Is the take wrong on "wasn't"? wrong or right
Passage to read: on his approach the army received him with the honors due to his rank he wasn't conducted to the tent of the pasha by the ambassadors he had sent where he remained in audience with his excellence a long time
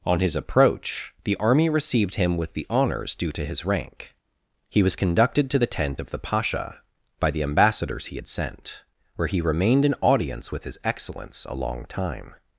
wrong